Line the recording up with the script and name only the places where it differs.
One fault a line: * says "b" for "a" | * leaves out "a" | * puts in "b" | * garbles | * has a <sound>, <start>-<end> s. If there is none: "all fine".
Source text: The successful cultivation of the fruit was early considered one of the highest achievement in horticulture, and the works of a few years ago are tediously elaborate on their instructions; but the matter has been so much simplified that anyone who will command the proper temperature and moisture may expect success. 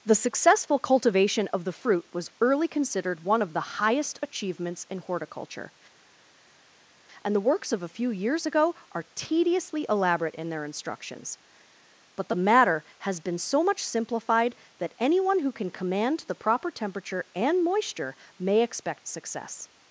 * says "achievements" for "achievement"
* says "in" for "on"
* says "can" for "will"